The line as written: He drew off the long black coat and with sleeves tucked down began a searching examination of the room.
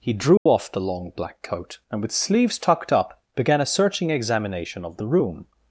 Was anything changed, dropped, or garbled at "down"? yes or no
yes